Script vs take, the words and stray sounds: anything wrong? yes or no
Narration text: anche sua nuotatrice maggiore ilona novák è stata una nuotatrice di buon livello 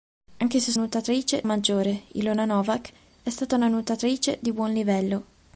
no